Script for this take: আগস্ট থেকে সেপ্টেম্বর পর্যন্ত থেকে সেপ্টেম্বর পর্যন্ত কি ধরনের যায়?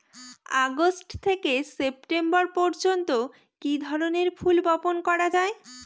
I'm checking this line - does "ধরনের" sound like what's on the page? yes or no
no